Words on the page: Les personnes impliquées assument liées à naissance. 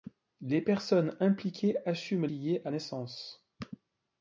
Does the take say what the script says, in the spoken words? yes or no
yes